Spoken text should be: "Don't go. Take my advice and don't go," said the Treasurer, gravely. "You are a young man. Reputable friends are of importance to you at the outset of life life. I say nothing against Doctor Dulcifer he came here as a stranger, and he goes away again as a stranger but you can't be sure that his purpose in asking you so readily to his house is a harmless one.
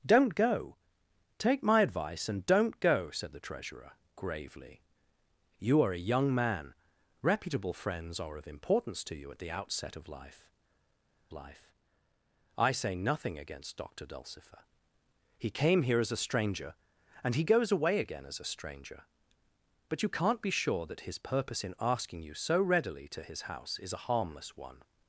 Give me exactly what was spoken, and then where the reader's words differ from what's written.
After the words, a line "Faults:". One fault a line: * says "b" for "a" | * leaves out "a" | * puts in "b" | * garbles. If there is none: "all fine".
"Don't go. Take my advice and don't go," said the Treasurer, gravely. "You are a young man. Reputable friends are of importance to you at the outset of life life. I say nothing against Doctor Dulcifer he came here as a stranger, and he goes away again as a stranger but you can't be sure that his purpose in asking you so readily to his house is a harmless one.
Faults:
all fine